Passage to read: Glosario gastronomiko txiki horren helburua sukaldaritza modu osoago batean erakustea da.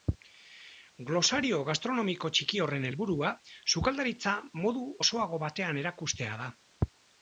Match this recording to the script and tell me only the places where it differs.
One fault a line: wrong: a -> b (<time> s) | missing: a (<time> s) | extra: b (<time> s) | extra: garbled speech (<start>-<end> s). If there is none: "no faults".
no faults